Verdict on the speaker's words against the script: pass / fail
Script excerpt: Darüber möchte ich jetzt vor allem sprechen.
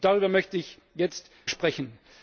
fail